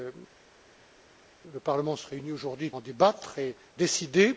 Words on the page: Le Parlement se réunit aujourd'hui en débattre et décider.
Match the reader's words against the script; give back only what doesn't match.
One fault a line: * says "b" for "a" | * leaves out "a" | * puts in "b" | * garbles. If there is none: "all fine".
all fine